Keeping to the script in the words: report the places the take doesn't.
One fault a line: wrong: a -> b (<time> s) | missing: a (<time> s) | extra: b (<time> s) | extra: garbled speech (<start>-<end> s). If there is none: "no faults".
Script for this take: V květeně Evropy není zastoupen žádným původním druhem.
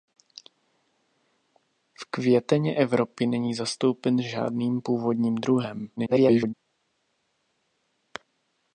extra: garbled speech (6.0-6.5 s)